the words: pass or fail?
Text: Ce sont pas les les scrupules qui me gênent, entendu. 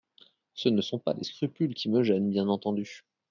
fail